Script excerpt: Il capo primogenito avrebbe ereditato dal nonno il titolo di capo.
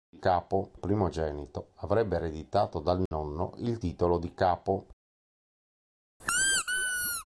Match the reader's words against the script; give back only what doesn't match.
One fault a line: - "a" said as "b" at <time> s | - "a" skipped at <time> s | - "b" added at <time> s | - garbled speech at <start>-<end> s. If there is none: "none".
none